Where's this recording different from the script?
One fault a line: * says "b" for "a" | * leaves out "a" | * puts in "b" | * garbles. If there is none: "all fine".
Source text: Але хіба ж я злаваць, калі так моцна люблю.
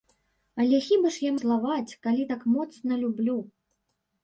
all fine